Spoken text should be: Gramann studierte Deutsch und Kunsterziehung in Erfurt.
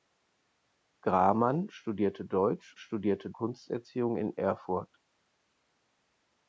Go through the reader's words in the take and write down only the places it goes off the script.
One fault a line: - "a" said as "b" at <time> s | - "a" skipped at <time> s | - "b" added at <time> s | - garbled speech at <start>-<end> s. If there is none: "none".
- "und" said as "studierte" at 2.7 s